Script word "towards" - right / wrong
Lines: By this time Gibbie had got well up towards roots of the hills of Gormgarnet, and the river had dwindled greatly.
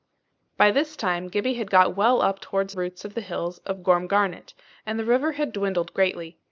right